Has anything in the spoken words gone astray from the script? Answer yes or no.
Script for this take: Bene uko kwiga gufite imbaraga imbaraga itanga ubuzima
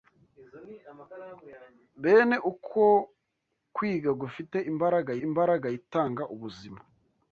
no